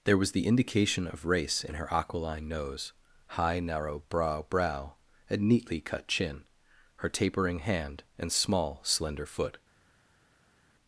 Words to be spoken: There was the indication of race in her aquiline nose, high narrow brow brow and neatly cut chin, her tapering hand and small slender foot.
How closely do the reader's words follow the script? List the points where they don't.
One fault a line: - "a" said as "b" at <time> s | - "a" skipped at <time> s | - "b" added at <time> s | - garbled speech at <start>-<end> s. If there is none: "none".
none